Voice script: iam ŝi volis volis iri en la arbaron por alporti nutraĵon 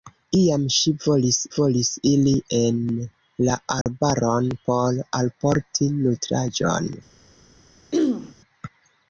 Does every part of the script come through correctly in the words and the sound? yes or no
no